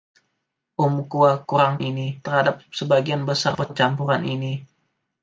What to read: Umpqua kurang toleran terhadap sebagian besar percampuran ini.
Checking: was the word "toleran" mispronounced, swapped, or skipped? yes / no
yes